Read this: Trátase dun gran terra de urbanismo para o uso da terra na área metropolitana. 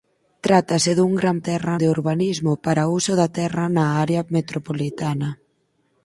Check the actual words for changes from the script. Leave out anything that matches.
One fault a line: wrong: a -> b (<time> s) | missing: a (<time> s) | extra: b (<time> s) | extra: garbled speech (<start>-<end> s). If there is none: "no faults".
no faults